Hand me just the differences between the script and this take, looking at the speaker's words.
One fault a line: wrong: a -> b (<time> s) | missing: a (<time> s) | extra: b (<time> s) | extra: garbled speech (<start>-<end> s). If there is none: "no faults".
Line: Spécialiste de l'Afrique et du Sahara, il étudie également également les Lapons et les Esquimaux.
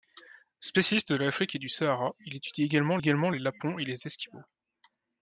no faults